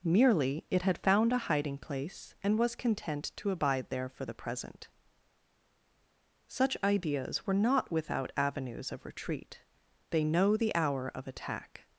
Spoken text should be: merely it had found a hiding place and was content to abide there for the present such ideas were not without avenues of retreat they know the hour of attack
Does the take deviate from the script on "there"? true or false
false